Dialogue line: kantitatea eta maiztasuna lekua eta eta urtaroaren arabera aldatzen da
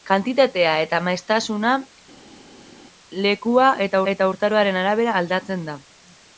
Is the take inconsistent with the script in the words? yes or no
no